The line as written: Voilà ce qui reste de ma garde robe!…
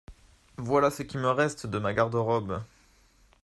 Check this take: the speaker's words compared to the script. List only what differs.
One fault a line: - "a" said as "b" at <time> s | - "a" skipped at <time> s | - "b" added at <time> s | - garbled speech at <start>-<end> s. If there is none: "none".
- "me" added at 1.2 s